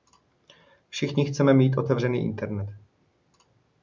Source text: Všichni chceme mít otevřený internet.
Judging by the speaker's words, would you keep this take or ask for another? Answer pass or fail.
pass